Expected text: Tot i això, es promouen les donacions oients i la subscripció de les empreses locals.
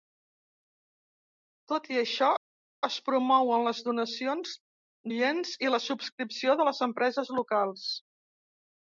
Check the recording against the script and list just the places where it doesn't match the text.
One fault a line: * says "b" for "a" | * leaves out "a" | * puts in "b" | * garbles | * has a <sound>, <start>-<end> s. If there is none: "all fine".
all fine